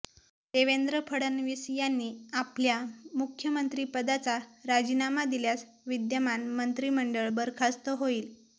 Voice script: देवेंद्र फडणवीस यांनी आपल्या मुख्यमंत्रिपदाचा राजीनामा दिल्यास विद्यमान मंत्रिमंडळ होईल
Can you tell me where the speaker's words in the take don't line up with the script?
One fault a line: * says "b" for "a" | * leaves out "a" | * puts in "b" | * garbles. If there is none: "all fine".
* puts in "बरखास्त"